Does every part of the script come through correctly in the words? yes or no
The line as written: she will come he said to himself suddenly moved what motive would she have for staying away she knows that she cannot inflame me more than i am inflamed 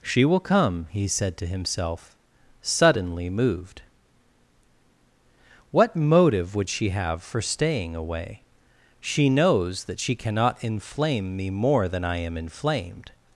yes